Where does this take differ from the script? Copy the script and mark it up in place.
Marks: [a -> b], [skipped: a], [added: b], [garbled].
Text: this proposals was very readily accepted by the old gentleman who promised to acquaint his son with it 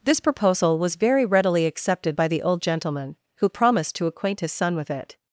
this [proposals -> proposal] was very readily accepted by the old gentleman who promised to acquaint his son with it